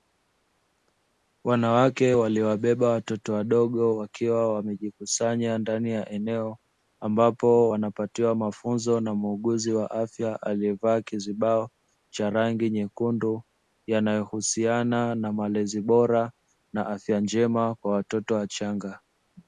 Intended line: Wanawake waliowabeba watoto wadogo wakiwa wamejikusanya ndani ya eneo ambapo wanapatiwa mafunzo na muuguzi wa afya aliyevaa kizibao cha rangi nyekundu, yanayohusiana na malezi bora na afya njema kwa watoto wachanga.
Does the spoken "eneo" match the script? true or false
true